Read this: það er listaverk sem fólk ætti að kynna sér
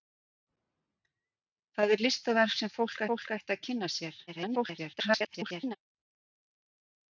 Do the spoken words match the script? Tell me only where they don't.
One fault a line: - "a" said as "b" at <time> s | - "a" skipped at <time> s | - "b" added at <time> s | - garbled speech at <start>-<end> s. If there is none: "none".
- "fólk" added at 3.1 s
- garbled speech at 4.3-5.8 s